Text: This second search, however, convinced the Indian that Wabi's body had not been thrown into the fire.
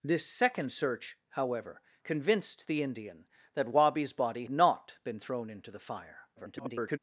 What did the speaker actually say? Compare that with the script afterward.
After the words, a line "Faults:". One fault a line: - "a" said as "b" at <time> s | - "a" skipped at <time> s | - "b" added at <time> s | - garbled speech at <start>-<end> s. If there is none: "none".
This second search, however, convinced the Indian that Wabi's body not been thrown into the fire. [garbled]
Faults:
- "had" skipped at 4.5 s
- garbled speech at 6.4-7.0 s